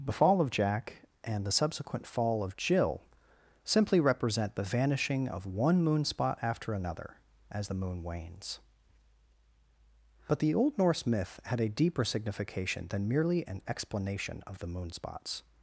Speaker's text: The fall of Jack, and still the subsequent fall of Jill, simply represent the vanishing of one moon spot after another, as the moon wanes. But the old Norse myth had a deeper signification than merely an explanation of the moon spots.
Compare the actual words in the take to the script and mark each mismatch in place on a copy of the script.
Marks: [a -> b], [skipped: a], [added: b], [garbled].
The fall of Jack, and [skipped: still] the subsequent fall of Jill, simply represent the vanishing of one moon spot after another, as the moon wanes. But the old Norse myth had a deeper signification than merely an explanation of the moon spots.